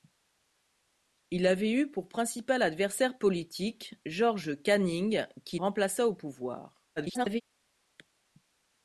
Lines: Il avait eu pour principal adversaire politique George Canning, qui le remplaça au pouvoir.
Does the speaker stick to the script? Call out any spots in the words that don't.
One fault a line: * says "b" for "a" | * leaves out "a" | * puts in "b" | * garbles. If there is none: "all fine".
* leaves out "le"
* garbles